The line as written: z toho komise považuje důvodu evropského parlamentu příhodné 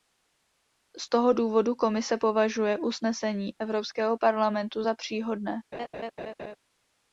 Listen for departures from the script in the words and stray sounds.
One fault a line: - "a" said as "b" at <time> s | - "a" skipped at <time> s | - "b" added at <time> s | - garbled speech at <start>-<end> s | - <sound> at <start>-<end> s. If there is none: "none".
- "důvodu" added at 1.3 s
- "důvodu" said as "usnesení" at 2.8 s
- "za" added at 4.8 s
- laugh at 5.7-6.6 s